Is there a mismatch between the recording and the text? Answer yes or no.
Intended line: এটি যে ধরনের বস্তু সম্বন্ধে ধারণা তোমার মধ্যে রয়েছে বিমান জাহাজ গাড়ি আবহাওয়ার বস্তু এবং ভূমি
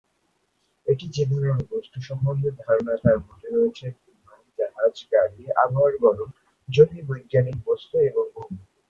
yes